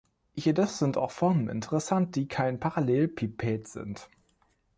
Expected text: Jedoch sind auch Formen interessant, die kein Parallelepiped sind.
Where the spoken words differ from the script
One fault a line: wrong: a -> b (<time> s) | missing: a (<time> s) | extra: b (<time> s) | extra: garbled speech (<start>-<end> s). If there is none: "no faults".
no faults